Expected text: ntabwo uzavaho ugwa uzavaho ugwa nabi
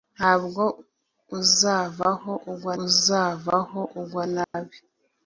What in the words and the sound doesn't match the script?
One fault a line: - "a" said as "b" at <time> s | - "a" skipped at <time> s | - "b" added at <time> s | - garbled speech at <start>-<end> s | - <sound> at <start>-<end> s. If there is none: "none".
- dropout at 4.4-4.5 s